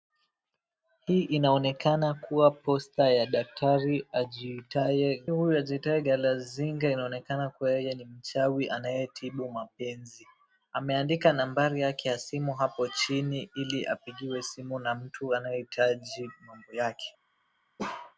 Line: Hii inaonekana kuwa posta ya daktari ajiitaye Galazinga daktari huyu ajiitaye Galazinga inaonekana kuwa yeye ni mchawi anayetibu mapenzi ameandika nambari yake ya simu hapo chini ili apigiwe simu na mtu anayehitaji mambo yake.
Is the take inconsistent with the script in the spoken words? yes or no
yes